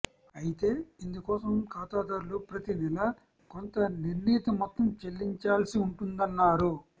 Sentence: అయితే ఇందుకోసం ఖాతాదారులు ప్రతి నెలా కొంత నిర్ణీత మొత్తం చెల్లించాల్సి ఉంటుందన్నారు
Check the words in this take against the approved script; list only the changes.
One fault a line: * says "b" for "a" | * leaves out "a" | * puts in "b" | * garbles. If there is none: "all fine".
all fine